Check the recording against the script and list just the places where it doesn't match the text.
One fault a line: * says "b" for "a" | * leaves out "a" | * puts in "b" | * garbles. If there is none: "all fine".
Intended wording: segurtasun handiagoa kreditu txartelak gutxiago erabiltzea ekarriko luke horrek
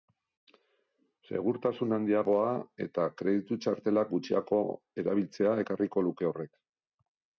* puts in "eta"